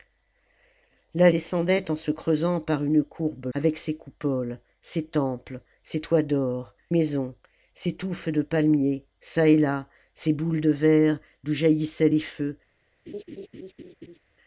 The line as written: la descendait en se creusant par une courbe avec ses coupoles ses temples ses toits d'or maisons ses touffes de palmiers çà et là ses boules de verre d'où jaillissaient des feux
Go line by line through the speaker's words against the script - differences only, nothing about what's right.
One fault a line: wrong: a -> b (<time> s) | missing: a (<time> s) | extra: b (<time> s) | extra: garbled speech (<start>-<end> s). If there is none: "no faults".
no faults